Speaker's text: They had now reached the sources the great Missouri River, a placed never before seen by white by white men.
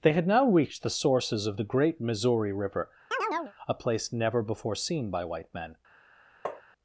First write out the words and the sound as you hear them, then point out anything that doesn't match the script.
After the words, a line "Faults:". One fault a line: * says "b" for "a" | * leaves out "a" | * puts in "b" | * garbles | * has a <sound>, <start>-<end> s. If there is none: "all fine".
They had now reached the sources of the great Missouri River, a place never before seen by white men.
Faults:
* puts in "of"
* has a chirp, 3.1-3.5 s
* says "place" for "placed"
* leaves out "by white"
* has a tap, 6.5-6.6 s